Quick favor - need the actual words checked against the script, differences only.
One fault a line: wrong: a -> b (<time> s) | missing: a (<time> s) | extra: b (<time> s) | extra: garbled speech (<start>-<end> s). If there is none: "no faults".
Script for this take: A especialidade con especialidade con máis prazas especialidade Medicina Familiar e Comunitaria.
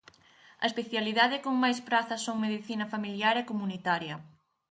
missing: especialidade con (1.5 s)
wrong: especialidade -> son (2.3 s)